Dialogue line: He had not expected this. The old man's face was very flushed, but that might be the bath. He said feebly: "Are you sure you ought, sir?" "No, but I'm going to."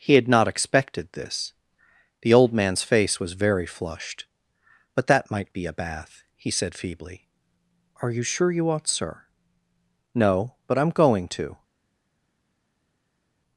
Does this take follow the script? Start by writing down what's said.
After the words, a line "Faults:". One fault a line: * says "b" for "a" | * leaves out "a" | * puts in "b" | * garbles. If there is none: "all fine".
He had not expected this. The old man's face was very flushed, but that might be a bath. He said feebly: "Are you sure you ought, sir?" "No, but I'm going to."
Faults:
* says "a" for "the"